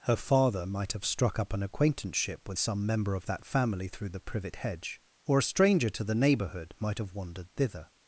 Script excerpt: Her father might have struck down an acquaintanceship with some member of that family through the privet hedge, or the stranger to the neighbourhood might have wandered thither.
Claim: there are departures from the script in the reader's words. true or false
true